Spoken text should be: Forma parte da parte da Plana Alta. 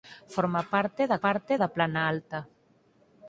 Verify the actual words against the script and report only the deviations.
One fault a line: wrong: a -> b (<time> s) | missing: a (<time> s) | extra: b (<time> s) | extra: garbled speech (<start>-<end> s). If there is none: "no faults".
no faults